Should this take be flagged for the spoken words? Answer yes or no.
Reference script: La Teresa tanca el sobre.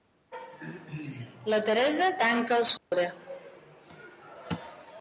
no